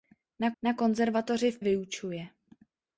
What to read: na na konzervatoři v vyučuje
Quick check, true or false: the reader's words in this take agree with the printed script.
true